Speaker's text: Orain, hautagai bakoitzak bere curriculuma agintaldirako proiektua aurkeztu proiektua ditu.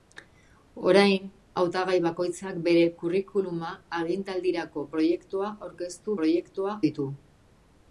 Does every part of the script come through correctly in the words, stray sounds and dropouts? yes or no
yes